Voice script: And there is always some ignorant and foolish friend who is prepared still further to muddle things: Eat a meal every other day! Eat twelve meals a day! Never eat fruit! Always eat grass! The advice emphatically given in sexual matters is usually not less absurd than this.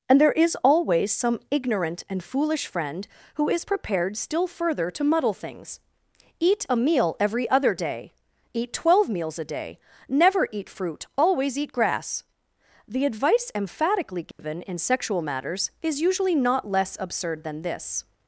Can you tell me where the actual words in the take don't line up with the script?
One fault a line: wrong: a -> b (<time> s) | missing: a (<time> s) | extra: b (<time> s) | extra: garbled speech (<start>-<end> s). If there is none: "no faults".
no faults